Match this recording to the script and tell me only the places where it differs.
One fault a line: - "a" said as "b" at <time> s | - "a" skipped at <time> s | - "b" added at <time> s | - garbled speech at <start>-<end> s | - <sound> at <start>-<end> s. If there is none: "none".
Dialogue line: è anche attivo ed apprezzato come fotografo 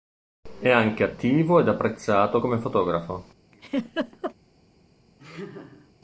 - laugh at 3.5-4.3 s
- laugh at 5.2-5.9 s